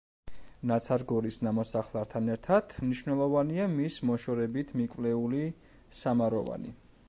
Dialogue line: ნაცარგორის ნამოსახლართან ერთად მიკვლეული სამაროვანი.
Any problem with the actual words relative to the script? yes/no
yes